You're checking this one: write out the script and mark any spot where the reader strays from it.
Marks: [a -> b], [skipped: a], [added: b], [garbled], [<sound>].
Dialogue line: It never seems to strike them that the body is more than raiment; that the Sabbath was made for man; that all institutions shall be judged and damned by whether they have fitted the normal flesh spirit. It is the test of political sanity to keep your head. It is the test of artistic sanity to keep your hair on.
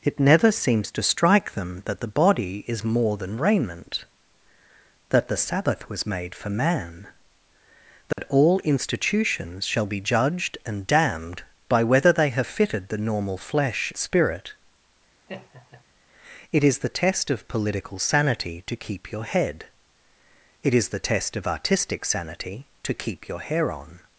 It never seems to strike them that the body is more than raiment; that the Sabbath was made for man; that [dropout] all institutions shall be judged and damned by whether they have fitted the normal flesh spirit. [laugh] It is the test of political sanity to keep your head. It is the test of artistic sanity to keep your hair on.